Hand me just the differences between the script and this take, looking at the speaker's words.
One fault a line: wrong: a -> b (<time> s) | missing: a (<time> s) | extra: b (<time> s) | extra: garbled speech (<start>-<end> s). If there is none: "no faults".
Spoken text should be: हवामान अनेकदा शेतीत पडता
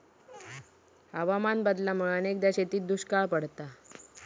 extra: बदलामुळा (1.6 s)
extra: दुष्काळ (2.9 s)